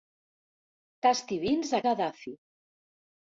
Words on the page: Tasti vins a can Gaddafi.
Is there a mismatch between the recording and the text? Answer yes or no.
yes